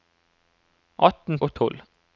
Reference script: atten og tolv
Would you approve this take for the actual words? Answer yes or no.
yes